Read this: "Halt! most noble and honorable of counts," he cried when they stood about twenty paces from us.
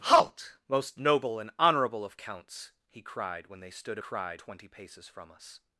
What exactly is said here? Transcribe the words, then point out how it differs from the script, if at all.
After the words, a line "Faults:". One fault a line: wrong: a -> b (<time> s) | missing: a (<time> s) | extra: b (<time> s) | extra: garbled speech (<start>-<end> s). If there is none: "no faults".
"Halt! most noble and honorable of counts," he cried when they stood cried twenty paces from us.
Faults:
wrong: about -> cried (4.0 s)